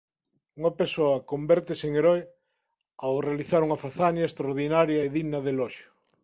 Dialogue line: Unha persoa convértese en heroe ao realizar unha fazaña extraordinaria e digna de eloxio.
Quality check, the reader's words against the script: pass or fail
pass